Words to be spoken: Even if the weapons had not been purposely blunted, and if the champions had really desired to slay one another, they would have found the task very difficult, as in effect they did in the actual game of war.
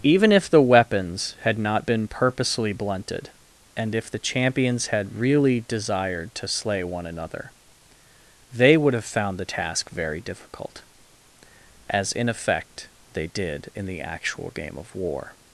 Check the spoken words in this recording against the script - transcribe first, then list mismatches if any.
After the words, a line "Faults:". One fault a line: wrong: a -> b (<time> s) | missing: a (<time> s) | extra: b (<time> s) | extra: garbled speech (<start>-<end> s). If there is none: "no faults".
Even if the weapons had not been purposely blunted, and if the champions had really desired to slay one another, they would have found the task very difficult, as in effect they did in the actual game of war.
Faults:
no faults